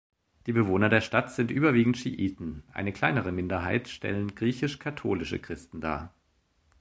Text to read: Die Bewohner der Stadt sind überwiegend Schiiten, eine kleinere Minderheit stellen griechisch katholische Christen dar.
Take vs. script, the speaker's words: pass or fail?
pass